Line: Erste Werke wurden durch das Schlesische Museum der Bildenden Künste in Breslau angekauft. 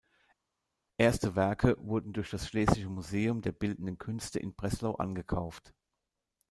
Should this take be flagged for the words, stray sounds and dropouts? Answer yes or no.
no